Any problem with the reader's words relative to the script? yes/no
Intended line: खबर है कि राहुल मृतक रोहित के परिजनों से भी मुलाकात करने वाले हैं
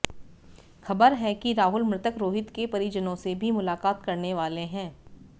no